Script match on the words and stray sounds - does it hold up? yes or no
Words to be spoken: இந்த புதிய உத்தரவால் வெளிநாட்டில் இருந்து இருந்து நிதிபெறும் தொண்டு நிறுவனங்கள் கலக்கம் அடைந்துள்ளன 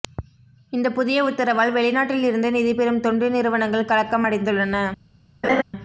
no